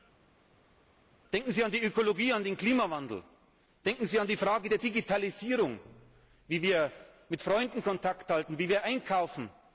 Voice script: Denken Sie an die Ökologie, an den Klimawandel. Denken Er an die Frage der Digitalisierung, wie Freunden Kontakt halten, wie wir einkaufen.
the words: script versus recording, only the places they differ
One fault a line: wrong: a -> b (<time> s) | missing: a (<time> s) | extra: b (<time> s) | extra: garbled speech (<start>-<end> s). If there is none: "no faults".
wrong: Er -> Sie (4.0 s)
extra: wir mit (6.6 s)